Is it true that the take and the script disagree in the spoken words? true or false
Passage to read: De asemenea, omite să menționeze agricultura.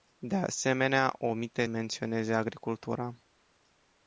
true